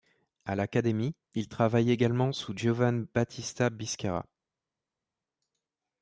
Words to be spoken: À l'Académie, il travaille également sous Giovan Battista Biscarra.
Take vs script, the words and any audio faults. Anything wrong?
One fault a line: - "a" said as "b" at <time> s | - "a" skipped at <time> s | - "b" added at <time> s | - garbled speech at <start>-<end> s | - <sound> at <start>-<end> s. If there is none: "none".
none